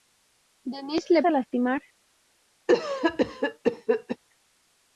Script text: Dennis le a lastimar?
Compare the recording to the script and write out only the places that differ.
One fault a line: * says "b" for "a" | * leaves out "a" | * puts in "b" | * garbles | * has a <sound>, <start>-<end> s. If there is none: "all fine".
* has a cough, 2.7-4.2 s